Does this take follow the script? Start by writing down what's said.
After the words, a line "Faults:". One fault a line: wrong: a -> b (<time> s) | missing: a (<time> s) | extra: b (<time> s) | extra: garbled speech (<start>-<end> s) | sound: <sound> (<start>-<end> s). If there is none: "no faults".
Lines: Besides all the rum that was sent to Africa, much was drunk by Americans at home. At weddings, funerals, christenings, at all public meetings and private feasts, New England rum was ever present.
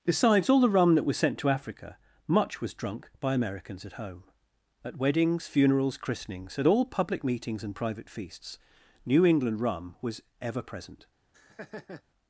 Besides all the rum that was sent to Africa, much was drunk by Americans at home. At weddings, funerals, christenings, at all public meetings and private feasts, New England rum was ever present.
Faults:
sound: laugh (11.3-12.0 s)